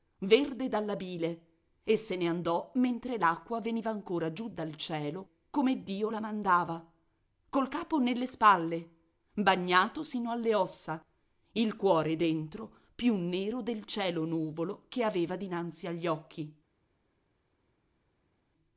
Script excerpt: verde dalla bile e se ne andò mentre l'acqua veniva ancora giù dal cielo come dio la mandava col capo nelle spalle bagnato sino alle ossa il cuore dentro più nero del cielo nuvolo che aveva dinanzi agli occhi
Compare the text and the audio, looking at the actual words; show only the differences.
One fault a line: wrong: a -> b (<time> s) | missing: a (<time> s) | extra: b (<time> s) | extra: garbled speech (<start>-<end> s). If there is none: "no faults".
no faults